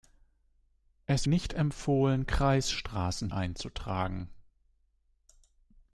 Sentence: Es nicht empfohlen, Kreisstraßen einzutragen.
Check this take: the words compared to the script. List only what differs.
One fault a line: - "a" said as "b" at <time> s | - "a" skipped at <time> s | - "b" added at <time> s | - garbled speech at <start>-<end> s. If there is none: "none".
none